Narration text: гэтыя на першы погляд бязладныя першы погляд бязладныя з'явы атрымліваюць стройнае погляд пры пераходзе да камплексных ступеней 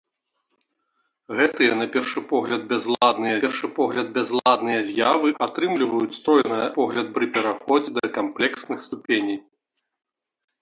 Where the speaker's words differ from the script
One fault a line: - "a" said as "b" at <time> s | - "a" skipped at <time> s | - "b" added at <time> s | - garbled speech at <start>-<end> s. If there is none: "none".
none